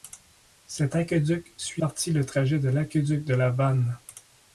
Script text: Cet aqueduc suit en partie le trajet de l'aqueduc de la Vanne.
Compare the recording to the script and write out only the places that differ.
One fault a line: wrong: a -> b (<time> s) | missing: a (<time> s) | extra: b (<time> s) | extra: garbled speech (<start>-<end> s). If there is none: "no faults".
missing: en (1.8 s)